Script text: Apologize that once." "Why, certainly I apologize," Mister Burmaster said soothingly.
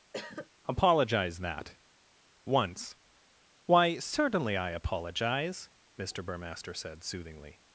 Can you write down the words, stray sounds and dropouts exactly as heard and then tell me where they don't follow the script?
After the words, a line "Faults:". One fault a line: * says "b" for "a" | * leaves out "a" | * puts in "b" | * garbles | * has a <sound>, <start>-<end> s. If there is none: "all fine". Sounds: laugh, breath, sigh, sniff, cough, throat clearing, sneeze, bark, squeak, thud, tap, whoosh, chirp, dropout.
Apologize that once." "Why, certainly I apologize," Mister Burmaster said soothingly.
Faults:
* has a cough, 0.1-0.5 s